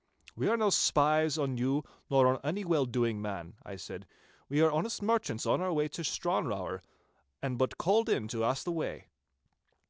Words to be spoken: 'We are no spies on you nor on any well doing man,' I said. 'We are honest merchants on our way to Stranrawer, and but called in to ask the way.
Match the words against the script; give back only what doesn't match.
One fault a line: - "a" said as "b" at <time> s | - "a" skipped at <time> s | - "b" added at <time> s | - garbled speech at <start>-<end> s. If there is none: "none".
none